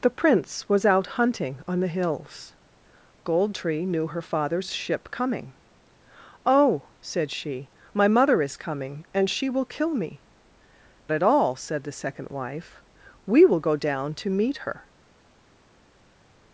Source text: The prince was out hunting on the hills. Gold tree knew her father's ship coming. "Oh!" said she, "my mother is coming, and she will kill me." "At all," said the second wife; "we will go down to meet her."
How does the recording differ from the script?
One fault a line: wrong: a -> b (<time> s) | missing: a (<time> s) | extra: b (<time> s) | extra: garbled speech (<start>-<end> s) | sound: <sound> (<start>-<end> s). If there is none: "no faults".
no faults